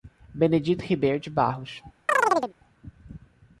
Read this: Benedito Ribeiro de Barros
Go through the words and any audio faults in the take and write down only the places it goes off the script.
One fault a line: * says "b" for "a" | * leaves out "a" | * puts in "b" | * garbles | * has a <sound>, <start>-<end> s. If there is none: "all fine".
* has a chirp, 2.1-2.5 s